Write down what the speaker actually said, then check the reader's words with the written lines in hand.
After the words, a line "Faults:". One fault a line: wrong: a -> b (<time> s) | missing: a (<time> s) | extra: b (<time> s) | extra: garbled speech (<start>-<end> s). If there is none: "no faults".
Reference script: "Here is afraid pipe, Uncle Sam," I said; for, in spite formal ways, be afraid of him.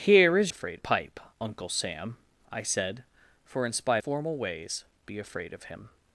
"Here is afraid pipe, Uncle Sam," I said; for, in spite formal ways, be afraid of him.
Faults:
no faults